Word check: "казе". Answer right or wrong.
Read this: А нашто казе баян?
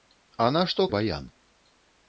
wrong